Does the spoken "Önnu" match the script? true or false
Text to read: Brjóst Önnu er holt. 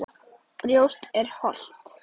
false